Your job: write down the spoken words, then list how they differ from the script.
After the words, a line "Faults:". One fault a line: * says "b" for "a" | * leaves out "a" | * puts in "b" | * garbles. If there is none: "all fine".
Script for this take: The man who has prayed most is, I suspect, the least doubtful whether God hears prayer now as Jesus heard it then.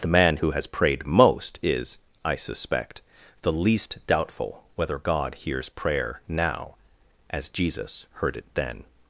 The man who has prayed most is, I suspect, the least doubtful whether God hears prayer now as Jesus heard it then.
Faults:
all fine